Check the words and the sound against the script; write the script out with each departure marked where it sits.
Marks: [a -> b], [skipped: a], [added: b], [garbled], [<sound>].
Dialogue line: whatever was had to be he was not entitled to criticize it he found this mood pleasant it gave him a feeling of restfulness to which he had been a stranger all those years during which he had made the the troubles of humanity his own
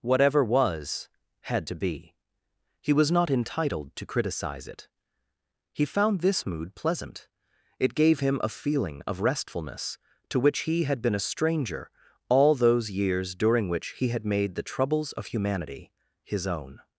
whatever was had to be he was not entitled to criticize it he found this mood pleasant it gave him a feeling of restfulness to which he had been a stranger all those years during which he had made the [skipped: the] troubles of humanity his own